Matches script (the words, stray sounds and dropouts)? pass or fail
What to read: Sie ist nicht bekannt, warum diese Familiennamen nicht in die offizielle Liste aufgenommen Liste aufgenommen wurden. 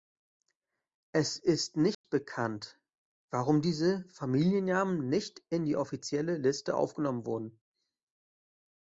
fail